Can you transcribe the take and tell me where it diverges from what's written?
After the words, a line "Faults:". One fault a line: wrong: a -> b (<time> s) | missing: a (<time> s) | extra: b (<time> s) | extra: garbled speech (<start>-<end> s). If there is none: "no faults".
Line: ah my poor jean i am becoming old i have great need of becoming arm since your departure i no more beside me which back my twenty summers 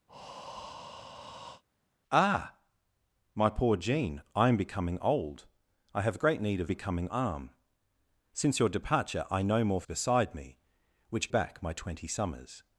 ah my poor jean i am becoming old i have great need of becoming arm since your departure i no more beside me which back my twenty summers
Faults:
no faults